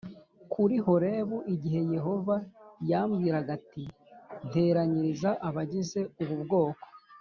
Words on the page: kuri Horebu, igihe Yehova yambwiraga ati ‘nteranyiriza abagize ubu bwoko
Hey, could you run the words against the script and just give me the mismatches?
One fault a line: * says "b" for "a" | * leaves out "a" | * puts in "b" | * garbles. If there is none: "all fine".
all fine